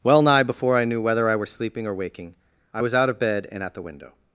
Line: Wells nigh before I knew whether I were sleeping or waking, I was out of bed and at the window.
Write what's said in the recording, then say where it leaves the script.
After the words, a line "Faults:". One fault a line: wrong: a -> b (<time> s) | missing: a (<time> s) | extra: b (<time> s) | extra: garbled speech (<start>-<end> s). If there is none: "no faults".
Well nigh before I knew whether I were sleeping or waking, I was out of bed and at the window.
Faults:
wrong: Wells -> Well (0.0 s)